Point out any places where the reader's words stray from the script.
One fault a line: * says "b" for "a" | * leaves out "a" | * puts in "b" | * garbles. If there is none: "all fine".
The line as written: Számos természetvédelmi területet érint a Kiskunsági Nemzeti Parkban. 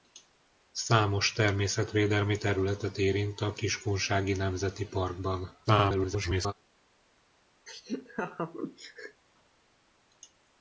* garbles